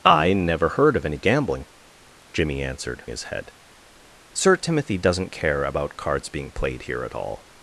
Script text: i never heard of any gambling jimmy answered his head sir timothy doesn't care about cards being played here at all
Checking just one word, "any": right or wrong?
right